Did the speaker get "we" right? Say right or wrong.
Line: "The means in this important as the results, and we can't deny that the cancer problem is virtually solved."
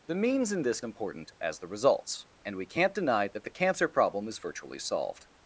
right